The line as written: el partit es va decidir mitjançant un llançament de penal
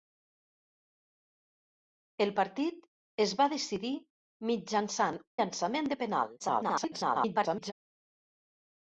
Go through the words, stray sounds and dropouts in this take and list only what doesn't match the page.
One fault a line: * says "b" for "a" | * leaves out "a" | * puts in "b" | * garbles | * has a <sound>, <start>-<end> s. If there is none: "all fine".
* leaves out "un"
* garbles